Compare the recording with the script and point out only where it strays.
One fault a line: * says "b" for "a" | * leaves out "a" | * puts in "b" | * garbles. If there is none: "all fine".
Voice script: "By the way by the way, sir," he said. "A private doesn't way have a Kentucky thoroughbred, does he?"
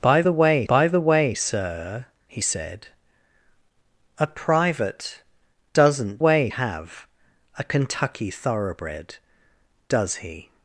all fine